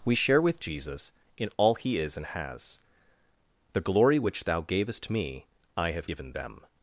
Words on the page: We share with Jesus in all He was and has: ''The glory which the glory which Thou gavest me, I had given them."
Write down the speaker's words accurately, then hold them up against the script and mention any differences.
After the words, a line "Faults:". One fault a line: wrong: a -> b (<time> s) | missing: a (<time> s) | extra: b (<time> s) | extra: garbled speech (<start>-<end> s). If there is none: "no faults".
We share with Jesus in all He is and has: ''The glory which Thou gavest me, I have given them."
Faults:
wrong: was -> is (2.0 s)
missing: the glory which (4.5 s)
wrong: had -> have (5.9 s)